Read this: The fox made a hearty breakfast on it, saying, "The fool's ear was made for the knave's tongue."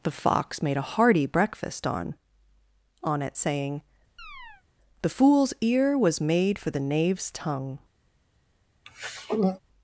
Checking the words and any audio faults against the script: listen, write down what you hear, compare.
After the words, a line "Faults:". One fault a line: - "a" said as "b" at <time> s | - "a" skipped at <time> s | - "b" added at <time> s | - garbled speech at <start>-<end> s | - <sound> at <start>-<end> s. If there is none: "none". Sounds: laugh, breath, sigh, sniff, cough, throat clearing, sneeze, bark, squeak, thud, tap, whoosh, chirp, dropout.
The fox made a hearty breakfast on on it, saying, "The fool's ear was made for the knave's tongue."
Faults:
- "on" added at 3.0 s
- chirp at 4.2-4.6 s
- throat clearing at 8.8-9.6 s